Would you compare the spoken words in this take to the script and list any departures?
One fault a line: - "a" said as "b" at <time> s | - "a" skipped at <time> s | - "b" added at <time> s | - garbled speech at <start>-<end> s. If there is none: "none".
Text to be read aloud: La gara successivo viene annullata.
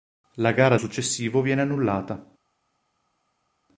none